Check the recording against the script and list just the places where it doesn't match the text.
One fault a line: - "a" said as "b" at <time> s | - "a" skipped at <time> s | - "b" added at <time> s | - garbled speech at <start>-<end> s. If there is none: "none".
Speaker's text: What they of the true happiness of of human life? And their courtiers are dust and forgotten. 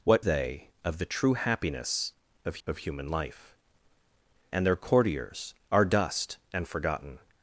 none